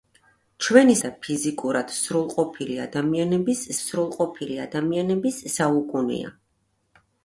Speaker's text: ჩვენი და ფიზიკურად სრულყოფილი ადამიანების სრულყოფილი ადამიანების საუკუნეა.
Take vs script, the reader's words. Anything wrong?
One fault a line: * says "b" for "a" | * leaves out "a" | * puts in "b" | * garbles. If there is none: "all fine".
all fine